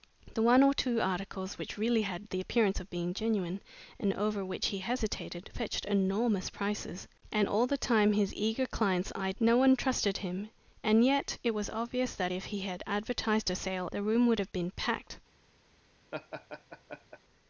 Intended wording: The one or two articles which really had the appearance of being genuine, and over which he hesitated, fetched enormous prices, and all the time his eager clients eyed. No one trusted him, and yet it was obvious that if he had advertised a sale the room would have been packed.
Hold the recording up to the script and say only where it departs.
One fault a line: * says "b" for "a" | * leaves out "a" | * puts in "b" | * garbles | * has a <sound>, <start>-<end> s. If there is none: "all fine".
* has a laugh, 16.1-17.2 s